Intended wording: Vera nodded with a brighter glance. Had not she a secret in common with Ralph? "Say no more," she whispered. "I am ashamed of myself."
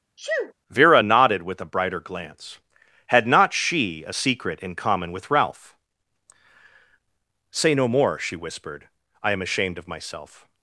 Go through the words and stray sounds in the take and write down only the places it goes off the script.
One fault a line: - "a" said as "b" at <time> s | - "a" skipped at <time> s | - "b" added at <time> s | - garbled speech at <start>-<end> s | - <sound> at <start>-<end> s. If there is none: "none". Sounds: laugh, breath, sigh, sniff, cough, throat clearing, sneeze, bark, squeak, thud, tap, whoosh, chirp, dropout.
- sneeze at 0.2-0.5 s